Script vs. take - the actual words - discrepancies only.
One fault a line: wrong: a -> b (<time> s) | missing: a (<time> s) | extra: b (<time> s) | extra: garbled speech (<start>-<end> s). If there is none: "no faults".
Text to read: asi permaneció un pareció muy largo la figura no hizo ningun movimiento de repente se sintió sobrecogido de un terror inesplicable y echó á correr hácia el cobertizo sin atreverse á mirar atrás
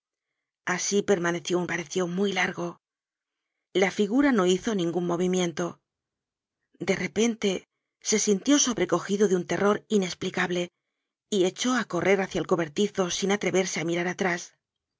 no faults